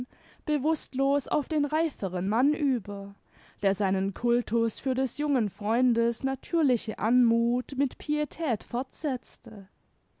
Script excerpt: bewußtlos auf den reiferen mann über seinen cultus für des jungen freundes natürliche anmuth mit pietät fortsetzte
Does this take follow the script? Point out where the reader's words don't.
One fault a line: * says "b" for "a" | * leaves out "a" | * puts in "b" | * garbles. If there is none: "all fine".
* puts in "der"